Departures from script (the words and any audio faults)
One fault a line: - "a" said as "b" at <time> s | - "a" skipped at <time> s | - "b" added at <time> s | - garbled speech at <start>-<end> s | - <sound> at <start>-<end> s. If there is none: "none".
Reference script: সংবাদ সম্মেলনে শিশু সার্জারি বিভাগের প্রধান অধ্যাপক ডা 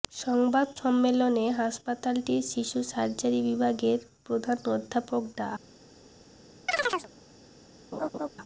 - "হাসপাতালটির" added at 1.6 s
- chirp at 6.7-7.1 s
- laugh at 7.9-8.3 s